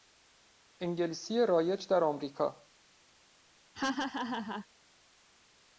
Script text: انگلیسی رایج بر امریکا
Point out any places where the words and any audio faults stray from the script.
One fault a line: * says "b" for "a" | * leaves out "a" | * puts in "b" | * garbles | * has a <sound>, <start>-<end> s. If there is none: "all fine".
* says "در" for "بر"
* has a laugh, 3.7-4.7 s